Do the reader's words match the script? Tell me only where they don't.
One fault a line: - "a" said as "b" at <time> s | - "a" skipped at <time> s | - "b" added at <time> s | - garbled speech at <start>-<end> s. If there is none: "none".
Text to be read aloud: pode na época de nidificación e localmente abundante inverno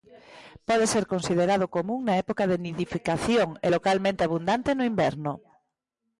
- "ser considerado común" added at 0.9 s
- "no" added at 4.7 s